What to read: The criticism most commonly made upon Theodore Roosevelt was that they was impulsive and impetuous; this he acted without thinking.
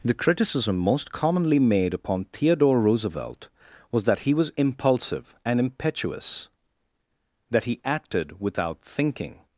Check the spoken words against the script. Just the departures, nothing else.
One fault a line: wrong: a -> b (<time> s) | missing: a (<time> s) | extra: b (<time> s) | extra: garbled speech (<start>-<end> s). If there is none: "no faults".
wrong: they -> he (4.2 s)
wrong: this -> that (7.5 s)